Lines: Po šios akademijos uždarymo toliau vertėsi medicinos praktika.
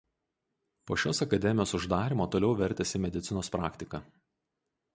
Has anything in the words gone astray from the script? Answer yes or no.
no